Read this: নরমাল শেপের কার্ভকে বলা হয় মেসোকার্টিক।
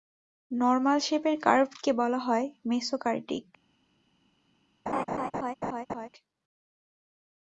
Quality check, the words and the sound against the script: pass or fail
fail